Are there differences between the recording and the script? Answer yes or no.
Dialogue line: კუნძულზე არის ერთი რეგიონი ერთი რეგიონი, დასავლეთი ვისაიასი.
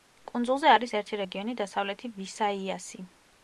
yes